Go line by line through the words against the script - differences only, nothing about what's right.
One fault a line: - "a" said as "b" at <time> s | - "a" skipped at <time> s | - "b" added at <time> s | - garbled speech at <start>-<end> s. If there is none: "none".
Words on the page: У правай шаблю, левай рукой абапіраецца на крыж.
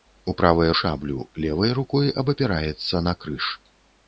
none